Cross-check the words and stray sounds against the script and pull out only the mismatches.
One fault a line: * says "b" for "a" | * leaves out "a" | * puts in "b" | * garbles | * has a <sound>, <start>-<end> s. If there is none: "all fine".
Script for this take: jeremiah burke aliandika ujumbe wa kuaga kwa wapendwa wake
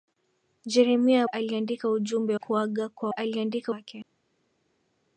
* leaves out "burke"
* leaves out "wa"
* says "aliandika" for "wapendwa"